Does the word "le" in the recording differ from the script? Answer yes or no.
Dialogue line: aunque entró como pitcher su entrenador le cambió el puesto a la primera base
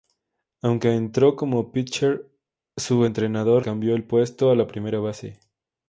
yes